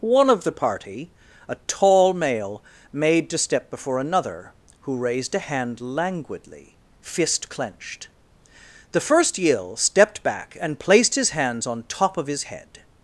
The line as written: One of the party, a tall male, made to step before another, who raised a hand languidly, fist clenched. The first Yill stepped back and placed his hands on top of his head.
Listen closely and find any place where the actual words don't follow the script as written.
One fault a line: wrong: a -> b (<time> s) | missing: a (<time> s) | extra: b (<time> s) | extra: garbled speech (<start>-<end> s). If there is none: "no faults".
no faults